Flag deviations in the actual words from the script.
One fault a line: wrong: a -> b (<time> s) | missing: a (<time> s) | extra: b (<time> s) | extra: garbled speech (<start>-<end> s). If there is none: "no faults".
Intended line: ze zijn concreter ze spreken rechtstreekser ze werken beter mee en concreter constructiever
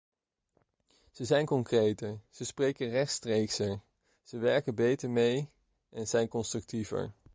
wrong: concreter -> zijn (6.1 s)